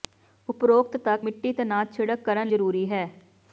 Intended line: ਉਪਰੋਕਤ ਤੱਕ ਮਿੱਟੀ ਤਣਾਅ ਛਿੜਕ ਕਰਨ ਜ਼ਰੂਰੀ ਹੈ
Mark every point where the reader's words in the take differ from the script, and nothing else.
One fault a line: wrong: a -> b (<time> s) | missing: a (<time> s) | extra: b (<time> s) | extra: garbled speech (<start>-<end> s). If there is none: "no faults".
no faults